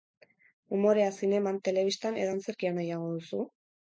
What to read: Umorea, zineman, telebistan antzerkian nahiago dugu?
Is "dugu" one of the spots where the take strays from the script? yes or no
yes